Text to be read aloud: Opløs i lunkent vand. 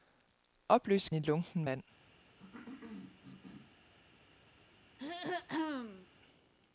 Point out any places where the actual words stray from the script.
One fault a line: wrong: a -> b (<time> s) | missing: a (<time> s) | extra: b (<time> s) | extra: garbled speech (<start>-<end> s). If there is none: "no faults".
no faults